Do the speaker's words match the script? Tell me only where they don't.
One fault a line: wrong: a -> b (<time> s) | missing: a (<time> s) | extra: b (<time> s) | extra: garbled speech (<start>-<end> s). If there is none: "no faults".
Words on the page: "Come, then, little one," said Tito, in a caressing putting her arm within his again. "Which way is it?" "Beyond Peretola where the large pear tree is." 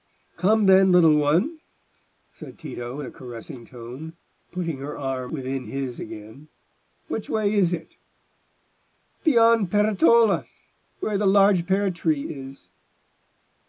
extra: tone (3.6 s)